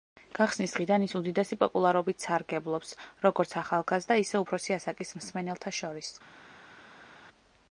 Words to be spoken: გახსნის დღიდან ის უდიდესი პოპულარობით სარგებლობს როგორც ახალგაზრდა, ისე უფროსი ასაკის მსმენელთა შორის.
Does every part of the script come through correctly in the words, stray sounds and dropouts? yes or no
yes